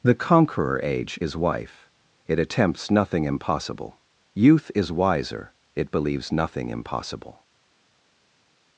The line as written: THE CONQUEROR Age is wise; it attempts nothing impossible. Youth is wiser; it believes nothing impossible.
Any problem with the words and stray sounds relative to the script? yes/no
yes